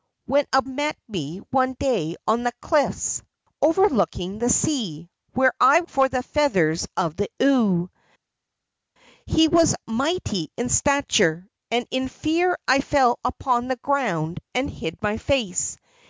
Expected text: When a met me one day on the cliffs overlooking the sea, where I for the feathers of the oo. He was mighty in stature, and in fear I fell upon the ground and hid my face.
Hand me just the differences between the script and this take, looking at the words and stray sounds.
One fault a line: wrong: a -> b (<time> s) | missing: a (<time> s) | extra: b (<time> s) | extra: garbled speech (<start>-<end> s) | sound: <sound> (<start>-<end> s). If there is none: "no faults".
no faults